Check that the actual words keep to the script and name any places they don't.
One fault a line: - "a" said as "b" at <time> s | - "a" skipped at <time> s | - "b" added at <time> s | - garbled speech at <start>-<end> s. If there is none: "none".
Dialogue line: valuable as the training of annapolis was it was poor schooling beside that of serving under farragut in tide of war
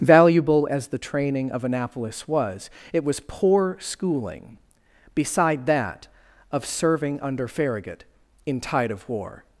none